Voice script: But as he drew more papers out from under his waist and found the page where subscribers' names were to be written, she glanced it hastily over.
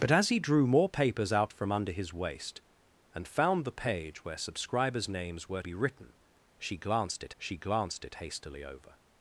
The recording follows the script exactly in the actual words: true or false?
false